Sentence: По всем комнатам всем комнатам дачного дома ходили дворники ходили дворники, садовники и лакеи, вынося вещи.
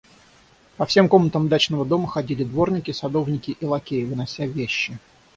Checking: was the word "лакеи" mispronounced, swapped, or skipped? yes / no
no